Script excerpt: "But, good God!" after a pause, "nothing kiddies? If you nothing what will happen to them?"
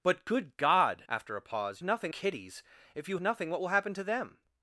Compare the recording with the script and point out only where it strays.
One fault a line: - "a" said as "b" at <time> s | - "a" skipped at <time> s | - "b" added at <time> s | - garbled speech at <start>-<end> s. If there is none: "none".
none